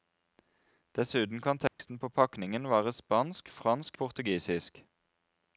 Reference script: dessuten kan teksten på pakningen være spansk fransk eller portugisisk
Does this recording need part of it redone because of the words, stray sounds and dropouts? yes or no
yes